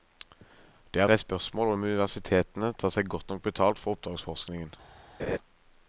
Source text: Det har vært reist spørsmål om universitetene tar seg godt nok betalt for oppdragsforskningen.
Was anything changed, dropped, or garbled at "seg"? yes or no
no